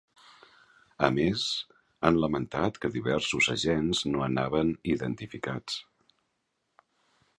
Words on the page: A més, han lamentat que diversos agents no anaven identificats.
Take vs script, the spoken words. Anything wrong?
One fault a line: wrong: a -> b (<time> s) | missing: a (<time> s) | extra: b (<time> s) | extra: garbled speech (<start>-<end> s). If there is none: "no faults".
no faults